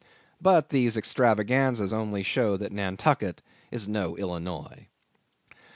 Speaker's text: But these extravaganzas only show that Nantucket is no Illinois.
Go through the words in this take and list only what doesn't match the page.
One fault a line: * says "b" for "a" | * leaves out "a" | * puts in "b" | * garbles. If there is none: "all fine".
all fine